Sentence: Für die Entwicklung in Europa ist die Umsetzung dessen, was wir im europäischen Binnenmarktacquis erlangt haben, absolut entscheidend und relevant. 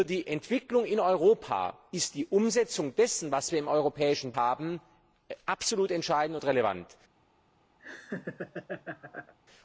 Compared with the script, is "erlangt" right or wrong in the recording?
wrong